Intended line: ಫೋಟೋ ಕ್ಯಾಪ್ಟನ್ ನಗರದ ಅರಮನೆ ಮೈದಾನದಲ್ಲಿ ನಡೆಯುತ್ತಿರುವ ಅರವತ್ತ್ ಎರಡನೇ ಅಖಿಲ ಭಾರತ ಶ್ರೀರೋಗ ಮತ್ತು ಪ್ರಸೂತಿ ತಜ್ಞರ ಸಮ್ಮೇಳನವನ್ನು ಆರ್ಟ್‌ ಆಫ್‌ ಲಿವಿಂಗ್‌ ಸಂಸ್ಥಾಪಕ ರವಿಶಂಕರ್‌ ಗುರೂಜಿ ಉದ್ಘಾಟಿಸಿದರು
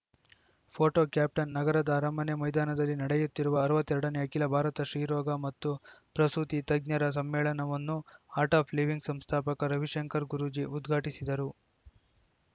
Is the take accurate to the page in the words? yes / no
yes